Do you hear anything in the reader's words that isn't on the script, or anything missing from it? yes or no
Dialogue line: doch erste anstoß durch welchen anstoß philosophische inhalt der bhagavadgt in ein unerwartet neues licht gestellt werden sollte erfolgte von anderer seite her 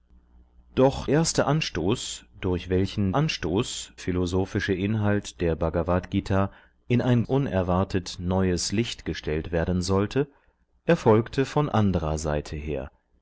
no